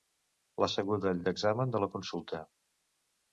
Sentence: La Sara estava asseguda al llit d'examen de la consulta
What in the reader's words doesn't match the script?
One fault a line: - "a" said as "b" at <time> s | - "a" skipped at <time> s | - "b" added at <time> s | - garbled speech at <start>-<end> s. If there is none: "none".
- "Sara estava" skipped at 0.7 s
- "llit" skipped at 1.2 s